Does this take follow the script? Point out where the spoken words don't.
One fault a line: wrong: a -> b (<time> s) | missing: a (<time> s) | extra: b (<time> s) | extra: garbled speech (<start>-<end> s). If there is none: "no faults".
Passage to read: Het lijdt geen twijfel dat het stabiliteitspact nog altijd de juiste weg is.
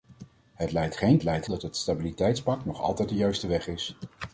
wrong: twijfel -> lijdt (1.2 s)